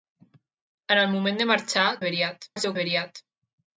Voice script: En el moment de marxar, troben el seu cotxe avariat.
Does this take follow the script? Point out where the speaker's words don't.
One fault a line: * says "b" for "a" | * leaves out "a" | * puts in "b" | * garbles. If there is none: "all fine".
* says "avariat" for "troben"
* leaves out "cotxe"